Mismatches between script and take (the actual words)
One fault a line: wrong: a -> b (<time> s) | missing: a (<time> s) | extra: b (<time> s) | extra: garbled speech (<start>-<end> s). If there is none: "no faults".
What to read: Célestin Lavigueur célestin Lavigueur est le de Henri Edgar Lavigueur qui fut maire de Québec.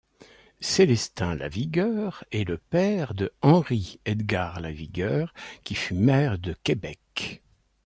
missing: célestin Lavigueur (2.2 s)
extra: père (2.6 s)